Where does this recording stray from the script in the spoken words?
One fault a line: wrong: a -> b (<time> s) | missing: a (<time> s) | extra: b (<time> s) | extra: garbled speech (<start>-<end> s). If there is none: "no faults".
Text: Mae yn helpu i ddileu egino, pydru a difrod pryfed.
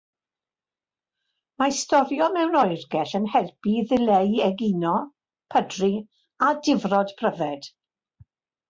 extra: storio mewn oergell (1.8 s)